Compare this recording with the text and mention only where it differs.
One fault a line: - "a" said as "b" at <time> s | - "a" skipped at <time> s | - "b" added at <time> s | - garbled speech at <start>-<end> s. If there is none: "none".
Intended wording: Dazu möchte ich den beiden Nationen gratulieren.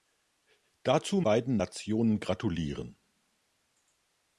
- "möchte ich den" skipped at 1.2 s